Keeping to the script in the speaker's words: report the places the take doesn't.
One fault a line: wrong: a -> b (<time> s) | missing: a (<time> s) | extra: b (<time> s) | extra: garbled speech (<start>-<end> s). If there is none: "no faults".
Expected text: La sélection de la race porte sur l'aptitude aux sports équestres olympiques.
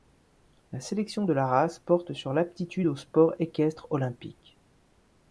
no faults